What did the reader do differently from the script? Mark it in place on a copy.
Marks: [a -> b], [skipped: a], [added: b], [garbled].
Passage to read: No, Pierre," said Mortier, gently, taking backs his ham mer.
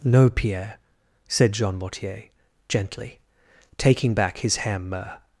No, Pierre," said [added: Jean] Mortier, gently, taking [backs -> back] his ham mer.